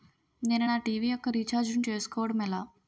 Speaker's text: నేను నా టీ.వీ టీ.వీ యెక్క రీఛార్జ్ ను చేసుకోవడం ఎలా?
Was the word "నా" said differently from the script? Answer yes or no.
no